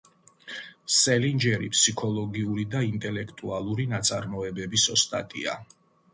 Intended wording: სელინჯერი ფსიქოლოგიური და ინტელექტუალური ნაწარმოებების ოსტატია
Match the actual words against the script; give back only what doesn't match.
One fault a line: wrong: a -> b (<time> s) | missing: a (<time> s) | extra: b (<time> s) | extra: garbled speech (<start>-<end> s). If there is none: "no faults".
no faults